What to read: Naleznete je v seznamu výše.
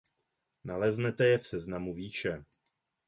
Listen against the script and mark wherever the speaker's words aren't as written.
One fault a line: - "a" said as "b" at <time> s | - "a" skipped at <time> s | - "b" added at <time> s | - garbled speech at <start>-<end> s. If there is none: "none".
none